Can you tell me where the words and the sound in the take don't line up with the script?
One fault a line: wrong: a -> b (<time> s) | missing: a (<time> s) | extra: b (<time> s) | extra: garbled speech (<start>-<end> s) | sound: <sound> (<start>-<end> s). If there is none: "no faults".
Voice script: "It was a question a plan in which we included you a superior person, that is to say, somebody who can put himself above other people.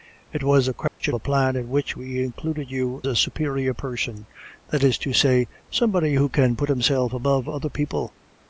sound: dropout (0.9-1.0 s)